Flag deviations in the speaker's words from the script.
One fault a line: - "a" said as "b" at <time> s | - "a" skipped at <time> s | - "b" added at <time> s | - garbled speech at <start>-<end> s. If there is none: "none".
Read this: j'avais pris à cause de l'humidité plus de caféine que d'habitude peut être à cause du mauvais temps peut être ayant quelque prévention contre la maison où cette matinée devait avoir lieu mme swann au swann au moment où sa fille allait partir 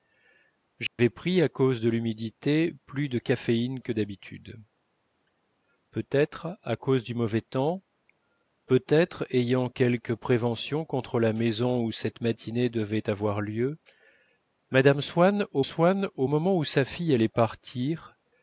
none